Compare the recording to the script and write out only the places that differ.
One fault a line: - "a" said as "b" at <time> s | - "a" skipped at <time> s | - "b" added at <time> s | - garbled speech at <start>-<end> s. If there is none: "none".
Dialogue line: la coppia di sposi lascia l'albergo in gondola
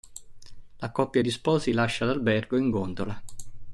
none